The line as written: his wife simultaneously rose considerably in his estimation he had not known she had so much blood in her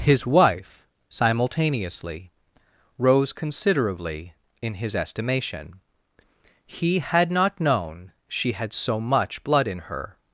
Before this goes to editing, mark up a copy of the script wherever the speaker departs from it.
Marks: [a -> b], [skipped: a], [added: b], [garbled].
his wife simultaneously rose considerably in his estimation he had not known she had so much blood in her